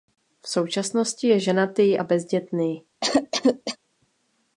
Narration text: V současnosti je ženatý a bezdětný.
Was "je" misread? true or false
false